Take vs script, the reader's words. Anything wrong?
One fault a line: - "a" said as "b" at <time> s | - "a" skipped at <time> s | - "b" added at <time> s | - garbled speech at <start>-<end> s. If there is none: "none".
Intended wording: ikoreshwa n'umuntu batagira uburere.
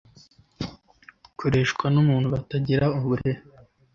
none